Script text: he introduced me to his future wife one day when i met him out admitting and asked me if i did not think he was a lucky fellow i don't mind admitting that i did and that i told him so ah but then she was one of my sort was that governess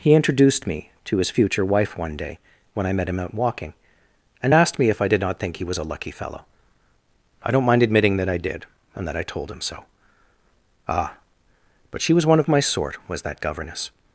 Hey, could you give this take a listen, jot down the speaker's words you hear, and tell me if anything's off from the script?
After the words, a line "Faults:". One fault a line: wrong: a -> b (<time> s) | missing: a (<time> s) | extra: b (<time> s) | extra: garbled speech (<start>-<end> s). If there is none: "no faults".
he introduced me to his future wife one day when i met him out walking and asked me if i did not think he was a lucky fellow i don't mind admitting that i did and that i told him so ah but she was one of my sort was that governess
Faults:
wrong: admitting -> walking (3.4 s)
missing: then (12.0 s)